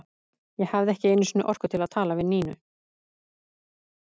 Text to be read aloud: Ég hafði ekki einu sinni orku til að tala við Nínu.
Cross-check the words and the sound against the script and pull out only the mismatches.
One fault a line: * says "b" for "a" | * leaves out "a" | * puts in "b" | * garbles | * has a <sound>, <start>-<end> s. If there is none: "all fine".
all fine